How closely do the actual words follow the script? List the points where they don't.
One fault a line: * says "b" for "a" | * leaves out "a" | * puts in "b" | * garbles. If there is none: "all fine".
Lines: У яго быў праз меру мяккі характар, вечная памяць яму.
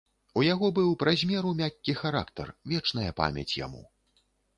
all fine